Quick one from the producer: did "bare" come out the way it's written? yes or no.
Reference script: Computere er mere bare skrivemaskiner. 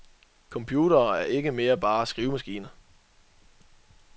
yes